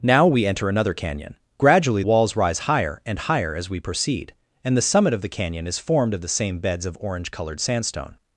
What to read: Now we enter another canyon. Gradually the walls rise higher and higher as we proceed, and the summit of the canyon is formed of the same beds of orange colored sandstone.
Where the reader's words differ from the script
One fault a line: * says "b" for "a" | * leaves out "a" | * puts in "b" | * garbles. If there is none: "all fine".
* leaves out "the"